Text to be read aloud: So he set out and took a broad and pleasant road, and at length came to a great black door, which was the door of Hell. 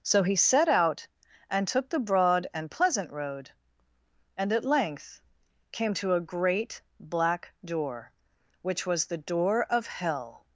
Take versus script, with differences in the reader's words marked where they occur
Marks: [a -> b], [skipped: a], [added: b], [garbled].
So he set out and took [a -> the] broad and pleasant road, and at length came to a great black door, which was the door of Hell.